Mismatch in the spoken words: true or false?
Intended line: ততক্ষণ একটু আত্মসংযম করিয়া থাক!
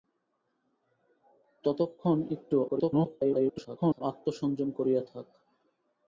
true